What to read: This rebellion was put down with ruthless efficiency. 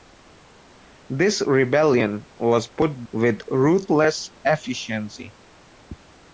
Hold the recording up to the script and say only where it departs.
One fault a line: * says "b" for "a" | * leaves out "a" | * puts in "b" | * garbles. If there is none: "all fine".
* leaves out "down"